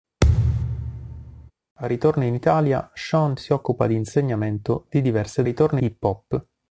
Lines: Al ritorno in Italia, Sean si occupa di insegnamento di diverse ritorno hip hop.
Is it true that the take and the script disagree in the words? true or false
false